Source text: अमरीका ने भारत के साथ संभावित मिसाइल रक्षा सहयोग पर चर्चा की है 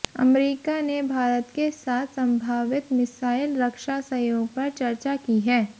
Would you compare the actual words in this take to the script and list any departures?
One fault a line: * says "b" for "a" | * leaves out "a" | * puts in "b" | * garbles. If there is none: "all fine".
all fine